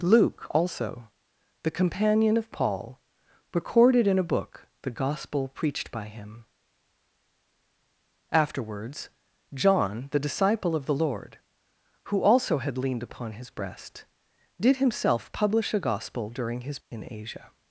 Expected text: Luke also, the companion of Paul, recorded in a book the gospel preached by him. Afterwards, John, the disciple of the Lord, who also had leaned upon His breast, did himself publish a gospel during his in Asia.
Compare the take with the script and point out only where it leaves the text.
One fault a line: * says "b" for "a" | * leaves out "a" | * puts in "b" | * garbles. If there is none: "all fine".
all fine